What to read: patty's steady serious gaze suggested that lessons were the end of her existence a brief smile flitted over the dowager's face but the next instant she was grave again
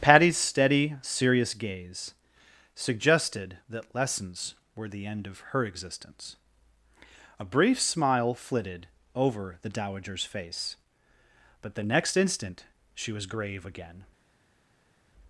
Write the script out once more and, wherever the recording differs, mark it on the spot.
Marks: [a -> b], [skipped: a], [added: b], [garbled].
patty's steady serious gaze suggested that lessons were the end of her existence a brief smile flitted over the dowager's face but the next instant she was grave again